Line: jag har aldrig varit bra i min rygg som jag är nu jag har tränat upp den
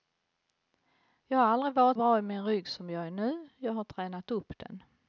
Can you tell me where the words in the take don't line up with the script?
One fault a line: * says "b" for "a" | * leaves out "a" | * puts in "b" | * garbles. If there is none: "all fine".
all fine